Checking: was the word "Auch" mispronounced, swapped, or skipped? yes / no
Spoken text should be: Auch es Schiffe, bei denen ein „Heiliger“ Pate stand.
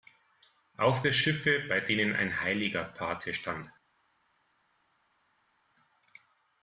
no